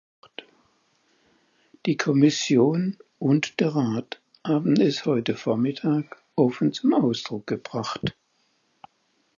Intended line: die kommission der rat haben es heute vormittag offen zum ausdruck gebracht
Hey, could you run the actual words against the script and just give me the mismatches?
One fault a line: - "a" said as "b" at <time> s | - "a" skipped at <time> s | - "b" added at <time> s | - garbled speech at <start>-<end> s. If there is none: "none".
- "und" added at 3.2 s